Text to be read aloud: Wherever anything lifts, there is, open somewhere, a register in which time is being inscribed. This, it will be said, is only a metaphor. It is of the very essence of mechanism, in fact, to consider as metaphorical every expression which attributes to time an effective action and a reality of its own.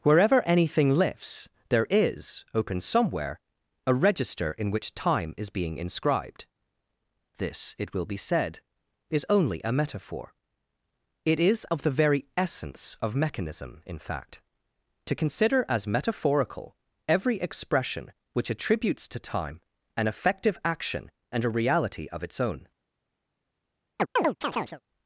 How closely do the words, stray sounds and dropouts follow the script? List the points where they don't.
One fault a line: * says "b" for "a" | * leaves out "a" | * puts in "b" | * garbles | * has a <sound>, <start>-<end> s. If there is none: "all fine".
* has a chirp, 24.0-24.8 s